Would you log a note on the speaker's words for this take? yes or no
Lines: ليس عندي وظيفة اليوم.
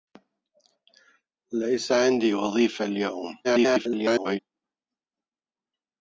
yes